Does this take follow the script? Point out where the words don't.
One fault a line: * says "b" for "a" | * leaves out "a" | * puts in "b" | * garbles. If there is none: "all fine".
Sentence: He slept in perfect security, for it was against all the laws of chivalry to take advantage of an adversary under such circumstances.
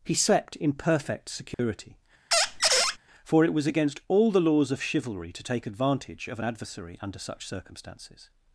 all fine